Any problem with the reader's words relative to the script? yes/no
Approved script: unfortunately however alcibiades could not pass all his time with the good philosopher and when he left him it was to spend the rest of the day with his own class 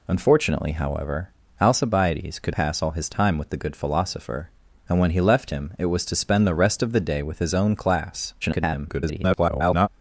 yes